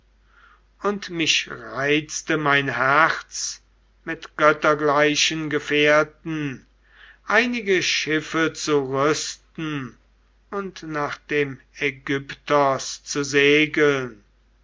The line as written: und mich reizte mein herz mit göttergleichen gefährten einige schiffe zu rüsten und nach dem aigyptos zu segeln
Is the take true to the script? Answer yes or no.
yes